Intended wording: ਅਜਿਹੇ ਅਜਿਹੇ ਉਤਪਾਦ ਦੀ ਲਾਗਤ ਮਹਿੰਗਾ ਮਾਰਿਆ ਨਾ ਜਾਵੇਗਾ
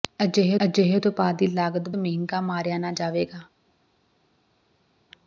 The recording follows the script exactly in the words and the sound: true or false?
true